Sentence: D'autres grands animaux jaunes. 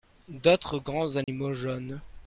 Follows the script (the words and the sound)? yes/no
no